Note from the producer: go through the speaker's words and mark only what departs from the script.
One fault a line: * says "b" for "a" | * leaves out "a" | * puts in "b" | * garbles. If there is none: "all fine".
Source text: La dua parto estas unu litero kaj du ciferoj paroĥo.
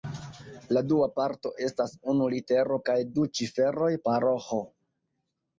all fine